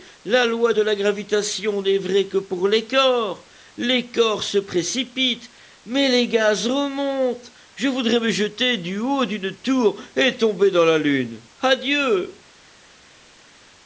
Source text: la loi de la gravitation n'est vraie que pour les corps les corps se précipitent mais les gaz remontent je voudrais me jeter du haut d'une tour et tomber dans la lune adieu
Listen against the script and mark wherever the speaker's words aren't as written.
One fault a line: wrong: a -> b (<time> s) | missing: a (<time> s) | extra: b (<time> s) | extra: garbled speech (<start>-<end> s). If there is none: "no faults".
no faults